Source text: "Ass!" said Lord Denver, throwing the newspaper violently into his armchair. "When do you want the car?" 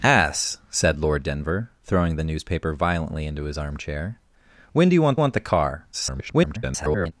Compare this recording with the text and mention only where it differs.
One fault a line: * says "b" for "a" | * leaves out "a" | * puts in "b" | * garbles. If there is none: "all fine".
* puts in "want"
* garbles